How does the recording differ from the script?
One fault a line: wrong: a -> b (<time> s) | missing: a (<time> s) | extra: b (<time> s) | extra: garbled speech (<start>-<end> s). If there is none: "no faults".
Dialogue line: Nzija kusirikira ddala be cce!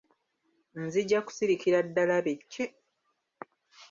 no faults